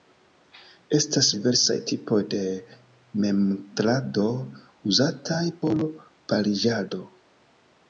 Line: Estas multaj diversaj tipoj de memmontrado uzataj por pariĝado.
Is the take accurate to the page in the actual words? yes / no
no